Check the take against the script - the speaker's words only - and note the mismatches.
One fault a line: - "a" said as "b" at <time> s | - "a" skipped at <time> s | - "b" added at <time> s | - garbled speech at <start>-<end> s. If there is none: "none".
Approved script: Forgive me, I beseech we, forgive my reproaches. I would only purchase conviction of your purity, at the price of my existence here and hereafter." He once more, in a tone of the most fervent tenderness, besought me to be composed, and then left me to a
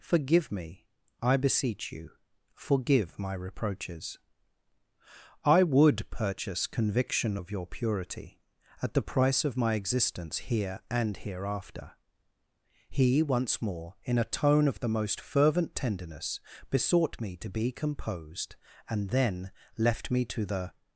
- "we" said as "you" at 1.9 s
- "only" skipped at 6.1 s
- "a" said as "the" at 20.4 s